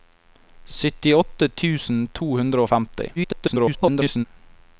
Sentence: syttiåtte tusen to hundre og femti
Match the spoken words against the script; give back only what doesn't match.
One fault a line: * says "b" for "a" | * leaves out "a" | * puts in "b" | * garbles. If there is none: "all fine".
* garbles